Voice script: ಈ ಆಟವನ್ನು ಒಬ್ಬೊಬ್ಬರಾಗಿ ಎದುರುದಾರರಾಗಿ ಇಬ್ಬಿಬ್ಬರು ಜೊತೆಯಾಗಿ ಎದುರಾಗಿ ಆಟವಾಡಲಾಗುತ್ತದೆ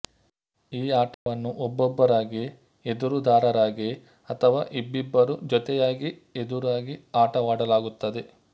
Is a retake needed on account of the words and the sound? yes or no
yes